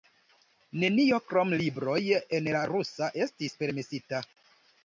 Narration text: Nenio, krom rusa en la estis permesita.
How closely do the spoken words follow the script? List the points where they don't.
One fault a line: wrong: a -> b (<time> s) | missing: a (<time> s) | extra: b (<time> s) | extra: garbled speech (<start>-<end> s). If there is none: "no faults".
wrong: rusa -> libroj (1.6 s)
extra: rusa (2.7 s)